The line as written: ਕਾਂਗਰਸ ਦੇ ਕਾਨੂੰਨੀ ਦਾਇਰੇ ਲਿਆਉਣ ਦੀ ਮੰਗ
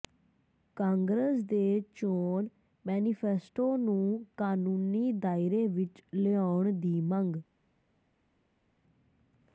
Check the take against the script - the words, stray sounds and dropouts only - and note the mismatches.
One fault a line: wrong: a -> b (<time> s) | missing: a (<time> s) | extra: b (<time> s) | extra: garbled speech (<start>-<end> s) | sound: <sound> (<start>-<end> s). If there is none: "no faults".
extra: ਚੋਣ ਮੈਨੀਫੈਸਟੋ ਨੂੰ (1.9 s)
extra: ਵਿੱਚ (5.7 s)